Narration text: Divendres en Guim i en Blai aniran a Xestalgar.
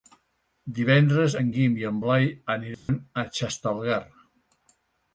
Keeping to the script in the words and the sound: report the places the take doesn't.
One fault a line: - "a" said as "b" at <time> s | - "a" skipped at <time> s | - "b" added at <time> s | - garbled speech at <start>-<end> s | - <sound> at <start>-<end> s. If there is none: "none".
- dropout at 2.7-2.9 s